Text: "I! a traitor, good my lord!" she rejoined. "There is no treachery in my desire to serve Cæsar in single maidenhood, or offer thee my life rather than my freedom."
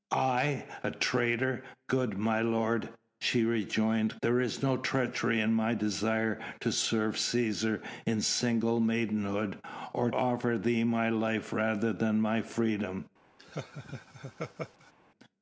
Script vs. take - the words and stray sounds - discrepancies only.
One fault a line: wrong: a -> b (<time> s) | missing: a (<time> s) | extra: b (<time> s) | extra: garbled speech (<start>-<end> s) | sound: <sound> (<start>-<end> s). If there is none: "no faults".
sound: laugh (13.4-14.9 s)